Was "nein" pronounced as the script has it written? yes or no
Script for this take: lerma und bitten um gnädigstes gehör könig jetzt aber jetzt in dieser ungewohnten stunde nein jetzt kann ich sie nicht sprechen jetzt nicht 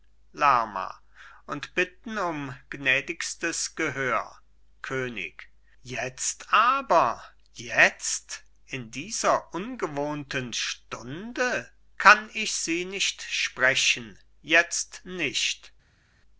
no